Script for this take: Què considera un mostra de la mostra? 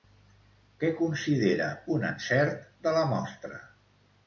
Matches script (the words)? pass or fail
fail